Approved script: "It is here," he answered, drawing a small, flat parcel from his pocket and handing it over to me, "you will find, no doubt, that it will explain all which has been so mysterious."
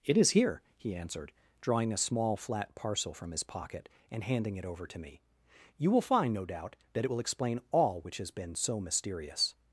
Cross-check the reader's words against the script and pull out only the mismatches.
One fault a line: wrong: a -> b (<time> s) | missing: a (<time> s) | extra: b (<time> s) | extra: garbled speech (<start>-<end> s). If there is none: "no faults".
no faults